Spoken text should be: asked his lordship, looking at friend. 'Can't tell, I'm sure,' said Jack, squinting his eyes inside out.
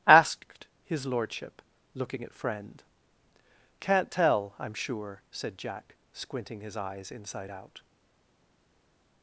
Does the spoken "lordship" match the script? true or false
true